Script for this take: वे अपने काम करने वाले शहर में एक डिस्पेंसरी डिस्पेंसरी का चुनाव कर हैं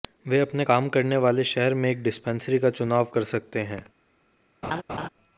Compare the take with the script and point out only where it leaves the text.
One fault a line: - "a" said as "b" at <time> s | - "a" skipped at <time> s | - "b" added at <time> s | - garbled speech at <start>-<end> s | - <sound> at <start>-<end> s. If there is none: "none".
- "डिस्पेंसरी" skipped at 2.6 s
- "सकते" added at 3.3 s
- laugh at 4.6-5.1 s